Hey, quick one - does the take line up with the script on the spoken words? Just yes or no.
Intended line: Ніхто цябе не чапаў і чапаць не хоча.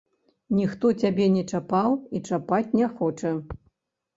yes